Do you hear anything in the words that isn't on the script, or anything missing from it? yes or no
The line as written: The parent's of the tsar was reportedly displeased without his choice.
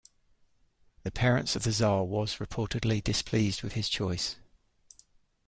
yes